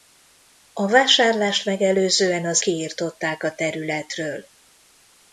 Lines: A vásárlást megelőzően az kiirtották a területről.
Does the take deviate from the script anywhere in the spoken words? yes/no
no